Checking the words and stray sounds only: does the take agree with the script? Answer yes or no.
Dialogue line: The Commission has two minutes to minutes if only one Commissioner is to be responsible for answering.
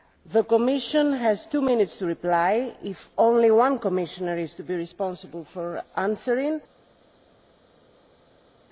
no